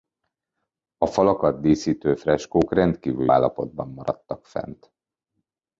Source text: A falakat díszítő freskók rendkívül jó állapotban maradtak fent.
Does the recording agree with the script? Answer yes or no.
no